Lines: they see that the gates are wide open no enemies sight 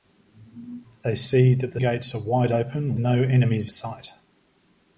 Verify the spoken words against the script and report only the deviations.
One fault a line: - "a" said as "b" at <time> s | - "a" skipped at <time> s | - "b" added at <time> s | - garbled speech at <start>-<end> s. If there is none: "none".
none